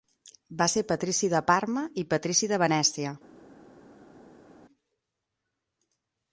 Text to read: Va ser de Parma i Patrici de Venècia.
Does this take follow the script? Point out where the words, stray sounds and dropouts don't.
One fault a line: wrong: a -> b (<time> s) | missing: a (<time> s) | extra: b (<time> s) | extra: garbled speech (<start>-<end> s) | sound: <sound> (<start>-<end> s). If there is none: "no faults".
extra: patrici (0.9 s)